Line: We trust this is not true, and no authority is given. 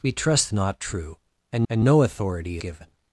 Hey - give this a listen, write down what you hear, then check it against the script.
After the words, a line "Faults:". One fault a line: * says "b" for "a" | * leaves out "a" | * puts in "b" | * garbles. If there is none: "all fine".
We trust not true, and and no authority given.
Faults:
* leaves out "this is"
* puts in "and"
* leaves out "is"